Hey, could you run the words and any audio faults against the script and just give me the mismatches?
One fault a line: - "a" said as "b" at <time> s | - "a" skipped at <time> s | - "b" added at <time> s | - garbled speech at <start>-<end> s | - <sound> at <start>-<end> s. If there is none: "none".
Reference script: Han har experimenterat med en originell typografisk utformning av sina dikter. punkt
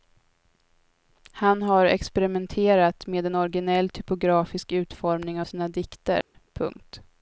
- dropout at 6.2-6.3 s